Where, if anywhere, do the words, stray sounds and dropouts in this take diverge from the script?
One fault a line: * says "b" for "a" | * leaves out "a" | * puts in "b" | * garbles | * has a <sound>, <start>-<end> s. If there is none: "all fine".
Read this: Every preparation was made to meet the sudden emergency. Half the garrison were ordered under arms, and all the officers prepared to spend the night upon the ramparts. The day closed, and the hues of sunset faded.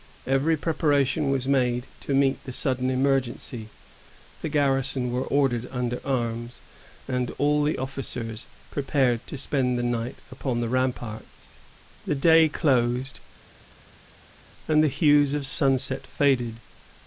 * leaves out "Half"